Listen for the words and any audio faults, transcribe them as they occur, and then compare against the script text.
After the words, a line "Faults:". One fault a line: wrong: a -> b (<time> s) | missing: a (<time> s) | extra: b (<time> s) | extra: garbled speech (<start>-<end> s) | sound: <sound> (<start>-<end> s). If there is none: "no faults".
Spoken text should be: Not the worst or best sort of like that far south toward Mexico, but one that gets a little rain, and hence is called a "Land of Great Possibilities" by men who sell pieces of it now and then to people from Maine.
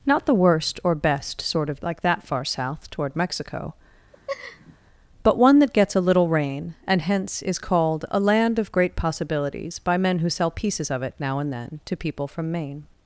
Not the worst or best sort of like that far south toward Mexico, but one that gets a little rain, and hence is called a "Land of Great Possibilities" by men who sell pieces of it now and then to people from Maine.
Faults:
sound: laugh (4.1-4.8 s)